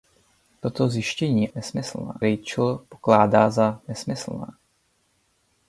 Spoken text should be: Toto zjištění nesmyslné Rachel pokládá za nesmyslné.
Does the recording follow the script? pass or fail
pass